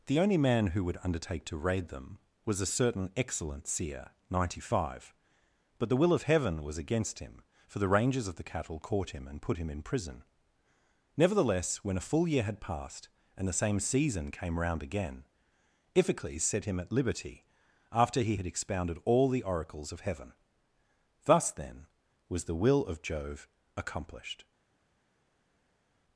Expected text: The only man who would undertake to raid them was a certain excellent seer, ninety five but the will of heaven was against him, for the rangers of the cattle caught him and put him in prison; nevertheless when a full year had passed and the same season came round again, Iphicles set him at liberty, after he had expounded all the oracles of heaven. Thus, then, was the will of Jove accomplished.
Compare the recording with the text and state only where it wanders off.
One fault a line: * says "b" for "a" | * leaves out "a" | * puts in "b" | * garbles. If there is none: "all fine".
all fine